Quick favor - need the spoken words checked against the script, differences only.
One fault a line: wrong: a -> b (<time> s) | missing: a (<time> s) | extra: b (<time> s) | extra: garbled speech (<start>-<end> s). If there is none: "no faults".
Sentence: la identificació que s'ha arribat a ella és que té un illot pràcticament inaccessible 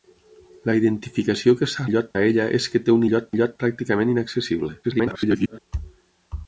wrong: arribat -> illot (1.9 s)
extra: illot (3.4 s)
extra: garbled speech (4.8-5.6 s)